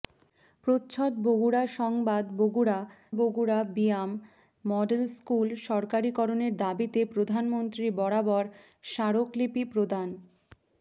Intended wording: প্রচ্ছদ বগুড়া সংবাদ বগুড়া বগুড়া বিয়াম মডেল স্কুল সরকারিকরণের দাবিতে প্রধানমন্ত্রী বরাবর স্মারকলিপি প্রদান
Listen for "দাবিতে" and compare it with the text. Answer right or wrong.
right